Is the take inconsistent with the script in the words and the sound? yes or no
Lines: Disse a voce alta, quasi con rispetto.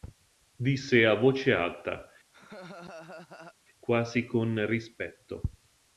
yes